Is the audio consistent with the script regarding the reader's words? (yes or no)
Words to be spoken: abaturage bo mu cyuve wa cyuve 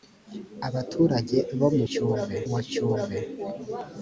yes